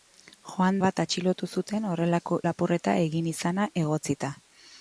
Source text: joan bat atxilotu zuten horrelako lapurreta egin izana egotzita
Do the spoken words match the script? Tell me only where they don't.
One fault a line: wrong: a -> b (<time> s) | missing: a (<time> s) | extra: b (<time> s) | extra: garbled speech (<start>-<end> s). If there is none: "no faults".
no faults